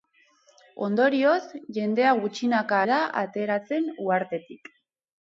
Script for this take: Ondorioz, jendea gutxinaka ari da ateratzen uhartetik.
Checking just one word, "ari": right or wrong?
wrong